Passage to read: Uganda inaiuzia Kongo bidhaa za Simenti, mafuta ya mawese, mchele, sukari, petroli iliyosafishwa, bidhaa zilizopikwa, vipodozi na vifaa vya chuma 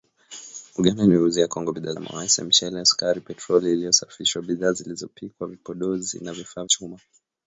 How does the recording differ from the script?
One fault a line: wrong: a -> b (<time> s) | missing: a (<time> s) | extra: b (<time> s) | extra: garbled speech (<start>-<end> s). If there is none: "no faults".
missing: za Simenti mafuta (1.9 s)
missing: vya (6.6 s)